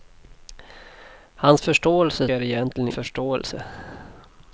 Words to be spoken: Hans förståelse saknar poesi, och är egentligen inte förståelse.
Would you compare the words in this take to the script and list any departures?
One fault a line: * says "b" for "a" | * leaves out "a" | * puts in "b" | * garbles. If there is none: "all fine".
* leaves out "saknar poesi och"
* leaves out "inte"